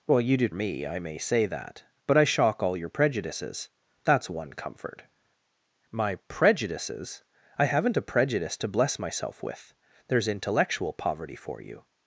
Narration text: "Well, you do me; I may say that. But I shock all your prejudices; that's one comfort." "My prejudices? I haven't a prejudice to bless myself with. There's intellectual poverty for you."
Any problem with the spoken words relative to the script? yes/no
no